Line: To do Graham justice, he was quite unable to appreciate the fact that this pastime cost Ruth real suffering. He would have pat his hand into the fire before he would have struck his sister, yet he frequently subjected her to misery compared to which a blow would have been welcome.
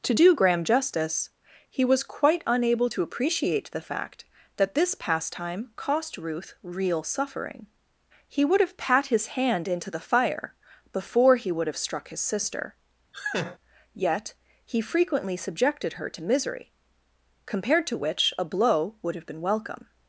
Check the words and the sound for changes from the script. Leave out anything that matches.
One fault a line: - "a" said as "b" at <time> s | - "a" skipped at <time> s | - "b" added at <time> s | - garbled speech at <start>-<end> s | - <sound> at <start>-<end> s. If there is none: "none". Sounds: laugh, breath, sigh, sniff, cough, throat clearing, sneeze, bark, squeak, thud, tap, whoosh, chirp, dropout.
- laugh at 13.1-13.6 s